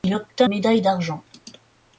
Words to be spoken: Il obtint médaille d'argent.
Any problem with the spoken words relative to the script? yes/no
no